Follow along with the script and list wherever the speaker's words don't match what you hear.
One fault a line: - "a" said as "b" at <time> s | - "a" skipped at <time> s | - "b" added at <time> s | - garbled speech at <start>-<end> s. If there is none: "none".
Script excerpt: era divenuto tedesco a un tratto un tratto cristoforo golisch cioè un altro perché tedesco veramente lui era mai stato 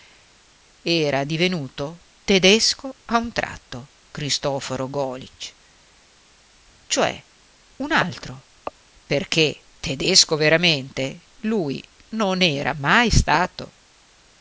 - "un tratto" skipped at 3.9 s
- "non" added at 12.1 s